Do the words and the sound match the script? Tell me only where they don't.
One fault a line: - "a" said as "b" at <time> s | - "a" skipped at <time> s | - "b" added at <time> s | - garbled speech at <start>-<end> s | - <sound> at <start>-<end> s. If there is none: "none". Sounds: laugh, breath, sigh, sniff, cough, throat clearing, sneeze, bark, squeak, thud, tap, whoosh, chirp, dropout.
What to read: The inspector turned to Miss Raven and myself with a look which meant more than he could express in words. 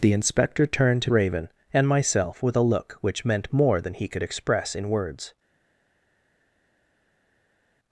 - "Miss" skipped at 1.1 s